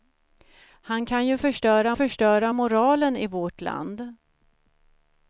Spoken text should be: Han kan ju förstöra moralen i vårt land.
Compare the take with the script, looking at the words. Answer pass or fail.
fail